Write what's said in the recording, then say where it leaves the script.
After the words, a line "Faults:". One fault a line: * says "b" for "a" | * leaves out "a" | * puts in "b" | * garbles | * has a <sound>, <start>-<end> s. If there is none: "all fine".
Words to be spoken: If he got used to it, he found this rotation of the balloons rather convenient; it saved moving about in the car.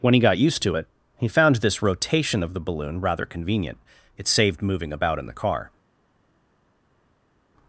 When he got used to it, he found this rotation of the balloon rather convenient; it saved moving about in the car.
Faults:
* says "When" for "If"
* says "balloon" for "balloons"